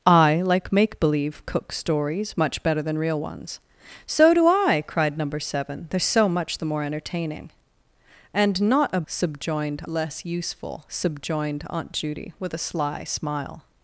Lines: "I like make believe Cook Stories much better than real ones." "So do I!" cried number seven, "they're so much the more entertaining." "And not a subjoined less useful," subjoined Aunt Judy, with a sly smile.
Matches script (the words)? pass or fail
pass